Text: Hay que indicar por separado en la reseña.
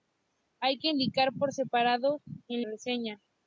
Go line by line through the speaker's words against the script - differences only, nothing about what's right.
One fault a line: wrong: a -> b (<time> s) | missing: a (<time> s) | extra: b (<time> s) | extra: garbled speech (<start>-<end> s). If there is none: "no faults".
missing: la (2.6 s)